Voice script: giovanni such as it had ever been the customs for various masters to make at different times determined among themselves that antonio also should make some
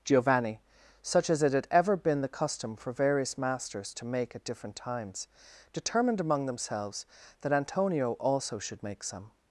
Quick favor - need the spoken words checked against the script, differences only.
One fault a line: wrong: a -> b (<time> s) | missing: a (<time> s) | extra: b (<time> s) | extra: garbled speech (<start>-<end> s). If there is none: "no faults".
wrong: customs -> custom (2.3 s)